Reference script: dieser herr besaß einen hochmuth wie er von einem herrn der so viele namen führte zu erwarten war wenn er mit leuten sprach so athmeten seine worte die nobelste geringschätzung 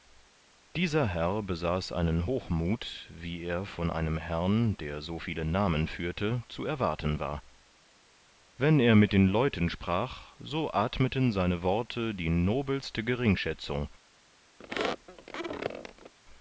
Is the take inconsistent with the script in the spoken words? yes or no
yes